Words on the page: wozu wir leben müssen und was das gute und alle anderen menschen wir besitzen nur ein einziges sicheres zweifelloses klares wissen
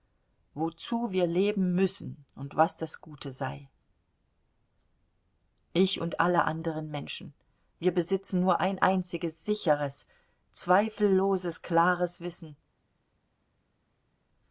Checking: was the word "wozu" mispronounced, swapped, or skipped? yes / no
no